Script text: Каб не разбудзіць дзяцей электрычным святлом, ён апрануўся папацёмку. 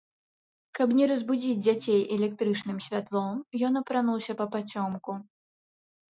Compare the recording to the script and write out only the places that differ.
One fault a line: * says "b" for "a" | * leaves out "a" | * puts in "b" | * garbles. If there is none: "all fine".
all fine